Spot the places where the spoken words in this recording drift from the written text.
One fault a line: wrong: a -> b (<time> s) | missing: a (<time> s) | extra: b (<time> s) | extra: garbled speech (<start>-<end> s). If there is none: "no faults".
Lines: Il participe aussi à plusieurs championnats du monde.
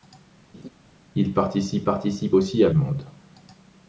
extra: participe (1.8 s)
missing: plusieurs championnats du (2.7 s)